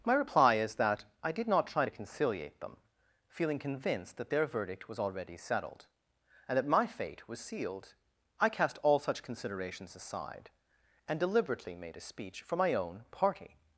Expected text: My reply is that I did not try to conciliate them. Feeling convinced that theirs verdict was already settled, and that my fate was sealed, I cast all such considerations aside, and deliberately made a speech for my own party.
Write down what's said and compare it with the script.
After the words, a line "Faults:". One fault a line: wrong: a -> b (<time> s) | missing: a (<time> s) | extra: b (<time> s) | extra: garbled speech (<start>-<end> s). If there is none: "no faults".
My reply is that I did not try to conciliate them. Feeling convinced that their verdict was already settled, and that my fate was sealed, I cast all such considerations aside, and deliberately made a speech for my own party.
Faults:
wrong: theirs -> their (4.3 s)